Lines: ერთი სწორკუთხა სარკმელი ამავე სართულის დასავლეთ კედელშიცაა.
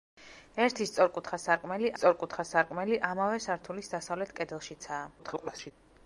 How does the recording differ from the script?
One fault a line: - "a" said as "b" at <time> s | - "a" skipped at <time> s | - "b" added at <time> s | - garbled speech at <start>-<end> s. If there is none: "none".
- "სწორკუთხა სარკმელი" added at 2.0 s
- garbled speech at 5.2-5.7 s